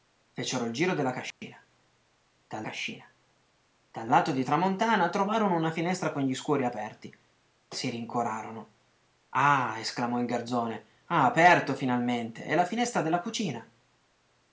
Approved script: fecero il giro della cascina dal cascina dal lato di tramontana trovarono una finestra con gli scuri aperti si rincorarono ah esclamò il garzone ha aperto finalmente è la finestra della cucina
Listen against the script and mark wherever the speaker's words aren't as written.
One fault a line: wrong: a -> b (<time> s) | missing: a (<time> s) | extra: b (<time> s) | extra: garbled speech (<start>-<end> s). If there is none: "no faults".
no faults